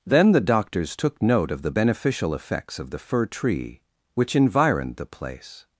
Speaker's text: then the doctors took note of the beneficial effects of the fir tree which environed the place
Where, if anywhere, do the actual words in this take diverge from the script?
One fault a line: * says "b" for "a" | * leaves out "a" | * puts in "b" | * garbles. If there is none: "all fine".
all fine